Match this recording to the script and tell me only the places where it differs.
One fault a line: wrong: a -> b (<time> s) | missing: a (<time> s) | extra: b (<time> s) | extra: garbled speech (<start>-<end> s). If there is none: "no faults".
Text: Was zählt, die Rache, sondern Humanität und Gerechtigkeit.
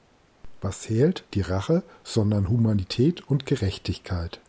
no faults